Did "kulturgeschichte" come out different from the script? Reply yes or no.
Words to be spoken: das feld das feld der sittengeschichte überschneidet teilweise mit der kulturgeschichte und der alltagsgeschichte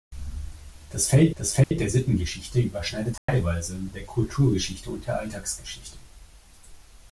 no